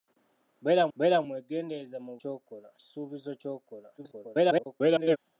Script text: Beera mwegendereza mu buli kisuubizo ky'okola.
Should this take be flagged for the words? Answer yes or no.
yes